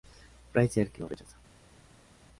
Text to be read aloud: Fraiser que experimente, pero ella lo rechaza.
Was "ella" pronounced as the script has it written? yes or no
no